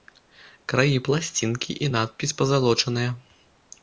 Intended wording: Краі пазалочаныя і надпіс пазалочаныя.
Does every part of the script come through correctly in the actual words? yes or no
no